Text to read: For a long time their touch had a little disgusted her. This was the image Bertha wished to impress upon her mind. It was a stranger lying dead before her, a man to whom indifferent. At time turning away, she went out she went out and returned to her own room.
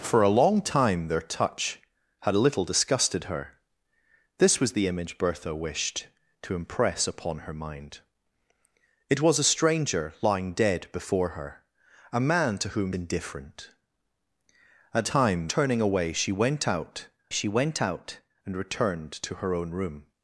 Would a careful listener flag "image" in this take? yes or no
no